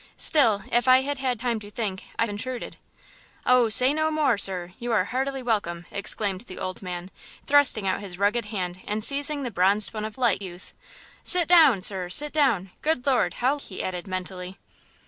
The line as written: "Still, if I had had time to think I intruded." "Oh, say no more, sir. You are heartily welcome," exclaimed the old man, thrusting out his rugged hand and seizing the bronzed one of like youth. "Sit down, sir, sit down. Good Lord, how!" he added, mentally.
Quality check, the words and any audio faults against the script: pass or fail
pass